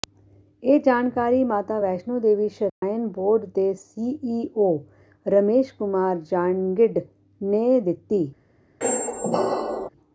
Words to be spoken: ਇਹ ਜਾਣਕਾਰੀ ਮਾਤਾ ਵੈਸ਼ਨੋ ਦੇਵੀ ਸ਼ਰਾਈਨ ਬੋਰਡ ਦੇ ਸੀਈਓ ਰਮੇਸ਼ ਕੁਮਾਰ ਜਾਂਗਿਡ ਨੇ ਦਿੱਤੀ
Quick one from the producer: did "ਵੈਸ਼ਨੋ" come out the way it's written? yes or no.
yes